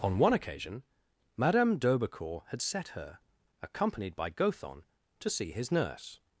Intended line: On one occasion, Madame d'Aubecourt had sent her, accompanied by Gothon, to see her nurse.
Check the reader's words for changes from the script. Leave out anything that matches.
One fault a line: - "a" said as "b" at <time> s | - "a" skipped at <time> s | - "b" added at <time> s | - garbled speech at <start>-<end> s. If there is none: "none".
- "sent" said as "set" at 2.6 s
- "her" said as "his" at 5.5 s